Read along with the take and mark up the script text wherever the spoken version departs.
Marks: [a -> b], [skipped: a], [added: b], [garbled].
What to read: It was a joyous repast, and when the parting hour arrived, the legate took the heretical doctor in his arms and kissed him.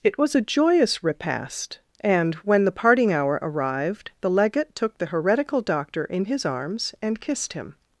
It was a joyous repast, and when the parting hour arrived, the legate took the heretical doctor in his arms and kissed him.